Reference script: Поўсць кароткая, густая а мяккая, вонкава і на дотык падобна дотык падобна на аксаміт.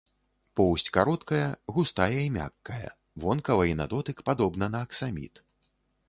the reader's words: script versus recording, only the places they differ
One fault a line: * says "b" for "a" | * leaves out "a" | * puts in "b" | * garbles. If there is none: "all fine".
* says "і" for "а"
* leaves out "дотык падобна"